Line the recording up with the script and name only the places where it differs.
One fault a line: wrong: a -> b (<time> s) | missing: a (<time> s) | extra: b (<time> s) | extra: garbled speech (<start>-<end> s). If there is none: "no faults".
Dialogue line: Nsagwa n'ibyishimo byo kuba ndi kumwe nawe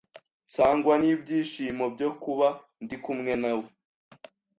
no faults